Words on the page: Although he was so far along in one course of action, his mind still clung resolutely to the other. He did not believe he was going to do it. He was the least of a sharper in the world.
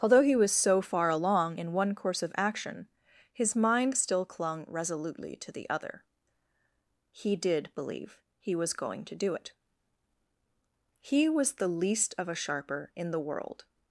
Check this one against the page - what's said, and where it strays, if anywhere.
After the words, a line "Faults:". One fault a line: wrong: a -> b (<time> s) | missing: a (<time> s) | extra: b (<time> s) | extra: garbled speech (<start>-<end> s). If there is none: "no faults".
Although he was so far along in one course of action, his mind still clung resolutely to the other. He did believe he was going to do it. He was the least of a sharper in the world.
Faults:
missing: not (7.7 s)